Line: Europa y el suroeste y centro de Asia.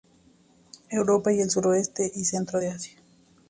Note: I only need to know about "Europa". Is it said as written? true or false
true